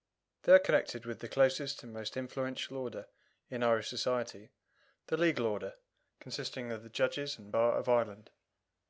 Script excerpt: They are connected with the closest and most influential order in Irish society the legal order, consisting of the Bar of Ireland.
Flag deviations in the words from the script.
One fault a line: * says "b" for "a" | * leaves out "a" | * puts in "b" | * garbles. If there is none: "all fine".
* puts in "judges and"